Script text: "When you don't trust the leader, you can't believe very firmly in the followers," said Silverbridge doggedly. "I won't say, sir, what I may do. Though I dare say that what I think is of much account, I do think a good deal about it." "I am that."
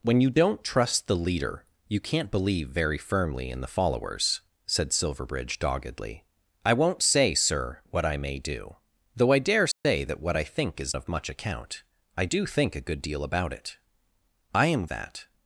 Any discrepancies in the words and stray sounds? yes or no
yes